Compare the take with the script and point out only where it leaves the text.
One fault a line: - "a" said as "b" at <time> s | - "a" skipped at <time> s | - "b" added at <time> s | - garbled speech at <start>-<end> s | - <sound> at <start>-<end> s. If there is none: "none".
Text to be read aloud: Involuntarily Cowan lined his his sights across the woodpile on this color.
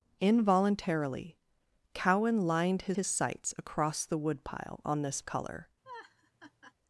- laugh at 5.8-6.7 s